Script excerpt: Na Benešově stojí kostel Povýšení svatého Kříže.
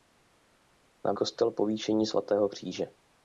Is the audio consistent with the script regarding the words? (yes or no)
no